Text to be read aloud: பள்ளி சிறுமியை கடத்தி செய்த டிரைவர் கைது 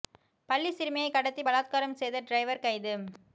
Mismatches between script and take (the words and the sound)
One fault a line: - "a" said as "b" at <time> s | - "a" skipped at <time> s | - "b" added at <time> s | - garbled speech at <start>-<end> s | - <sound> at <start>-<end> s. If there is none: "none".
- "பலாத்காரம்" added at 1.4 s